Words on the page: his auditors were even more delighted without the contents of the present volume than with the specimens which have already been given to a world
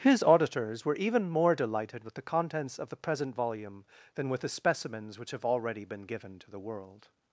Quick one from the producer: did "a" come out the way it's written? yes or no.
no